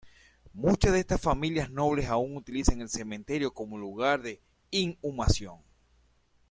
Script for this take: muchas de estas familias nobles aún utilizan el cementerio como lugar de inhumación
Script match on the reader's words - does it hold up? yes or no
yes